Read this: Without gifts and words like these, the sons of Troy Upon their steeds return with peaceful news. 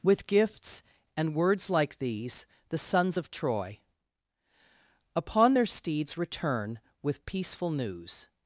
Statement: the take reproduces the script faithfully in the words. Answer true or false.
false